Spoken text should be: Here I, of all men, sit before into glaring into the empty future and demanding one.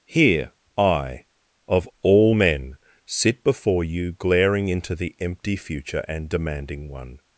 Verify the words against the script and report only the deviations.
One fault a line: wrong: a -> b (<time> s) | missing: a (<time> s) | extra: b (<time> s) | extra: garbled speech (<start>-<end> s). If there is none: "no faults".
wrong: into -> you (3.8 s)